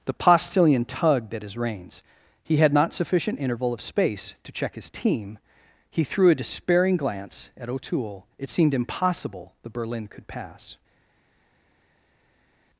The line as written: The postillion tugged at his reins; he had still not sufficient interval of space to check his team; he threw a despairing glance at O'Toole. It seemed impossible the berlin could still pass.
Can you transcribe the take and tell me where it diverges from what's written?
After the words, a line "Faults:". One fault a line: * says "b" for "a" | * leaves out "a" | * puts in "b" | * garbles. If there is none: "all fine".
The postillion tugged at his reins; he had not sufficient interval of space to check his team; he threw a despairing glance at O'Toole. It seemed impossible the berlin could pass.
Faults:
* leaves out "still"
* leaves out "still"